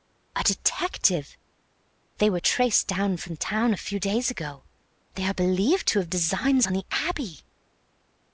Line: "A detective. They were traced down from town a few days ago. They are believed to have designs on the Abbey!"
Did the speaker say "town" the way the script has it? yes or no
yes